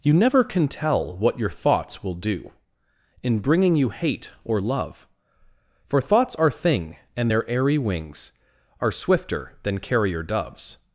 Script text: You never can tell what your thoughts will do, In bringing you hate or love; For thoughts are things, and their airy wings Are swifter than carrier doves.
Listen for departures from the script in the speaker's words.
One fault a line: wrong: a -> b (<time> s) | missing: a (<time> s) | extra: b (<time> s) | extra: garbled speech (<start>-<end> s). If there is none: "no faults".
wrong: things -> thing (6.5 s)